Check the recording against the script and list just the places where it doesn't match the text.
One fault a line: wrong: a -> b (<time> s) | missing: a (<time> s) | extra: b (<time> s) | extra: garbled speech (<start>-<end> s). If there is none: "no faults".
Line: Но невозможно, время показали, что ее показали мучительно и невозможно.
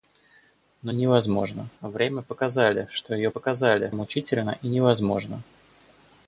no faults